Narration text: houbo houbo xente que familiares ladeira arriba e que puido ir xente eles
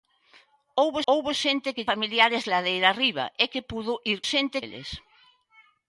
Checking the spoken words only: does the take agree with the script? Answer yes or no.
yes